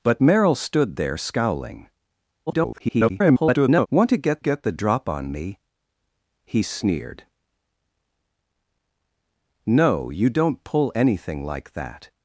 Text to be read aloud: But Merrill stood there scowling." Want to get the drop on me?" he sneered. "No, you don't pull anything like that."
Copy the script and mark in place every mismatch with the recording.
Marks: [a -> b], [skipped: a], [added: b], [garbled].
But Merrill stood there scowling." [garbled] Want to get [added: get] the drop on me?" he sneered. "No, you don't pull anything like that."